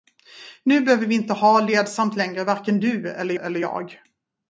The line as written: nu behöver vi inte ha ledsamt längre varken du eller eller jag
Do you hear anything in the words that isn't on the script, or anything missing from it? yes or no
no